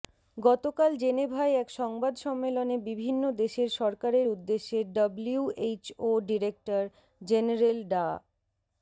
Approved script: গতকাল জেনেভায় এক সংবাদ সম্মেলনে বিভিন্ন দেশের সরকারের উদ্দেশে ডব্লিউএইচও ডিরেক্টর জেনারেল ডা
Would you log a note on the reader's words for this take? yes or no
no